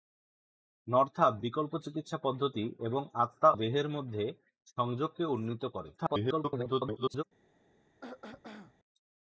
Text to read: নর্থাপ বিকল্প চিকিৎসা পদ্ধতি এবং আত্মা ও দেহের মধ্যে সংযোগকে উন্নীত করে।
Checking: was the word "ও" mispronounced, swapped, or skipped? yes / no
yes